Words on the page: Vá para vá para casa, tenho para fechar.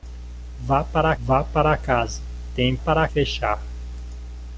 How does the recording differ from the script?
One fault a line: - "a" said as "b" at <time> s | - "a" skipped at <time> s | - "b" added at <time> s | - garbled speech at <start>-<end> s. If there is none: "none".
none